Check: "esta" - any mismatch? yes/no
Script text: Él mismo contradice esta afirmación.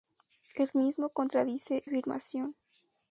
yes